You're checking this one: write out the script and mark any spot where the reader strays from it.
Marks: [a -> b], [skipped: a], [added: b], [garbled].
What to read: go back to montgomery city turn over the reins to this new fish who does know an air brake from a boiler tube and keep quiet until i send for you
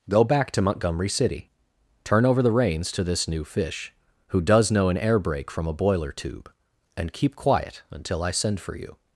go back to montgomery city turn over the reins to this new fish who does know an air brake from a boiler tube and keep quiet until i send for you